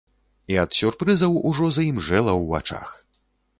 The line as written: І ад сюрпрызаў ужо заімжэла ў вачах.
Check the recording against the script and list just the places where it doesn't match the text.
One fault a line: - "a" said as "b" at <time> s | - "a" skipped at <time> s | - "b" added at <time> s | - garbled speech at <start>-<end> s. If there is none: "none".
none